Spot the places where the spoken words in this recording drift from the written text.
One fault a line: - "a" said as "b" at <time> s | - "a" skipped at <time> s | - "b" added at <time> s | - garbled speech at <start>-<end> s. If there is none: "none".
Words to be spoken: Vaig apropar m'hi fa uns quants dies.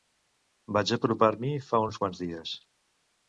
none